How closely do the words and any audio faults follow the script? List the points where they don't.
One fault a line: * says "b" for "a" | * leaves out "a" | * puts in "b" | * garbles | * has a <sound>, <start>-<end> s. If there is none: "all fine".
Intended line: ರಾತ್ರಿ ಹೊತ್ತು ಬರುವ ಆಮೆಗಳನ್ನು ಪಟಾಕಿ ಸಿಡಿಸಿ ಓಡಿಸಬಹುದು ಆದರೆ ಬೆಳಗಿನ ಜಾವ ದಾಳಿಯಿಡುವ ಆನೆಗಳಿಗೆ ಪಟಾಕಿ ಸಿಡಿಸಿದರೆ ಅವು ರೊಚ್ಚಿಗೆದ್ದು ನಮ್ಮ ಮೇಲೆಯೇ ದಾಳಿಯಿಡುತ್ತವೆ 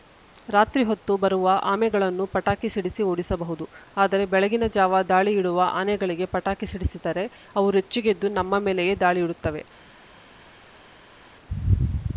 all fine